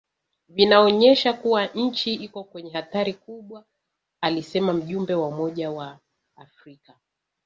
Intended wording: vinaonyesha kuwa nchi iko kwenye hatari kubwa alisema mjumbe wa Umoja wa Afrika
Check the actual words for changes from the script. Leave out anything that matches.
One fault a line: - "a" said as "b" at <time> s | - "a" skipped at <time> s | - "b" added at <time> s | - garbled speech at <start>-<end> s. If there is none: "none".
none